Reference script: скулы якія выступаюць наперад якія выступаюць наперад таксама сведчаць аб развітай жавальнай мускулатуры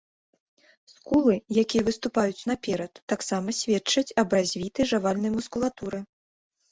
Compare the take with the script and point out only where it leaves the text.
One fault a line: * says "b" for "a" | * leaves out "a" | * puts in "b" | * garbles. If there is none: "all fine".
* leaves out "якія выступаюць наперад"